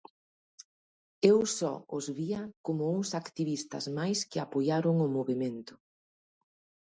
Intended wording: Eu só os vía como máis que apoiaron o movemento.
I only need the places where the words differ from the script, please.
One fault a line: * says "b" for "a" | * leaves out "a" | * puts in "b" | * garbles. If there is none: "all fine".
* puts in "uns activistas"